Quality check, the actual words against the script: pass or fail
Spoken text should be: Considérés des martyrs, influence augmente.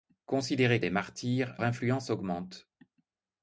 pass